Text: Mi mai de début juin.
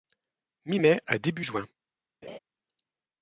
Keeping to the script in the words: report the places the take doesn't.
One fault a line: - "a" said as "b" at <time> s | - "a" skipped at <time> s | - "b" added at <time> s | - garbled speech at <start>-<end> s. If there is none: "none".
- "de" said as "à" at 1.1 s